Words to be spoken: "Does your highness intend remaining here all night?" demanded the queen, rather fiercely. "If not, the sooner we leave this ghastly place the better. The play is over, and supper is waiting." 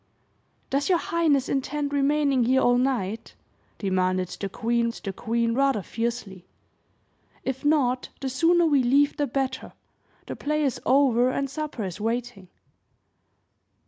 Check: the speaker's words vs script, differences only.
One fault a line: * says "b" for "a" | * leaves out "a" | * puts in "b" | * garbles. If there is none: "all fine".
* puts in "the queen"
* leaves out "this ghastly place"